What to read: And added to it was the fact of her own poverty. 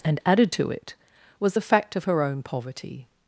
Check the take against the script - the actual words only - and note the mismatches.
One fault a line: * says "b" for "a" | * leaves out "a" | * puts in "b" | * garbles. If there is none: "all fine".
all fine